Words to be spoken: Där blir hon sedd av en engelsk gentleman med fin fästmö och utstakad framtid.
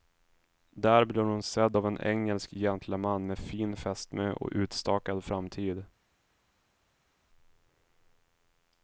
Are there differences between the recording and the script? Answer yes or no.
no